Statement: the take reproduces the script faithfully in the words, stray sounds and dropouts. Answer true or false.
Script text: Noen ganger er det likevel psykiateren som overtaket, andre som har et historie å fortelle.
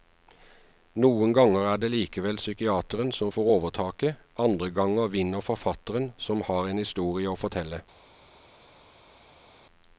false